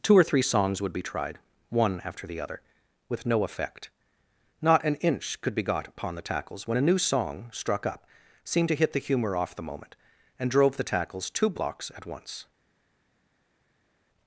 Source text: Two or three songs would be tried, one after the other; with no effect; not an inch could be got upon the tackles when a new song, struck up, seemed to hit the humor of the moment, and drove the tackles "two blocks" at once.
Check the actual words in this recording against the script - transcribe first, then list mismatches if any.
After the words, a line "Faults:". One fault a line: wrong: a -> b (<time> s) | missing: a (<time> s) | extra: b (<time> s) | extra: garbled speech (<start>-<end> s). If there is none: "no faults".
Two or three songs would be tried, one after the other; with no effect; not an inch could be got upon the tackles when a new song, struck up, seemed to hit the humor off the moment, and drove the tackles "two blocks" at once.
Faults:
wrong: of -> off (9.4 s)